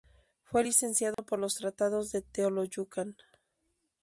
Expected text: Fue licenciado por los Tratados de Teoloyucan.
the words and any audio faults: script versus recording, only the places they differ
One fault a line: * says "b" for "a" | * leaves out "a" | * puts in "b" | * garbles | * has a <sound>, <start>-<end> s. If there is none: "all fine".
* has a dropout, 1.1-1.2 s